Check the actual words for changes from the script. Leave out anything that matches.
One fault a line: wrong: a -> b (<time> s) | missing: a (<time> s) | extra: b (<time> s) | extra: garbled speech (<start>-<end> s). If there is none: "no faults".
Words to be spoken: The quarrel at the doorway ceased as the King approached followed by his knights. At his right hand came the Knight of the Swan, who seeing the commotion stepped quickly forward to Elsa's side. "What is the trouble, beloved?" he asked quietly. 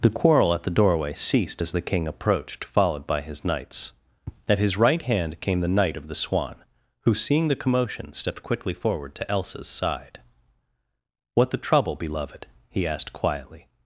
missing: is (11.5 s)